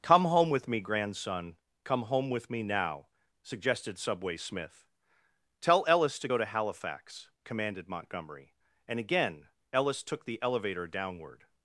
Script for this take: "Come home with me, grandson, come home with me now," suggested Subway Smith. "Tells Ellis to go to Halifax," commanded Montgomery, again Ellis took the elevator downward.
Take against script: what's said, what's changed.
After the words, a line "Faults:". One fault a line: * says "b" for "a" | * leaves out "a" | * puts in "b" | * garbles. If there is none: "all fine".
"Come home with me, grandson, come home with me now," suggested Subway Smith. "Tell Ellis to go to Halifax," commanded Montgomery, and again Ellis took the elevator downward.
Faults:
* says "Tell" for "Tells"
* puts in "and"